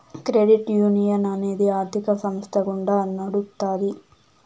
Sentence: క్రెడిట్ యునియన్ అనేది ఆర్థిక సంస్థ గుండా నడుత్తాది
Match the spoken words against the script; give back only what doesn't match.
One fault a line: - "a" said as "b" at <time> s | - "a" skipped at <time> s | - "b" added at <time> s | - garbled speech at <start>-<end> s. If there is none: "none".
none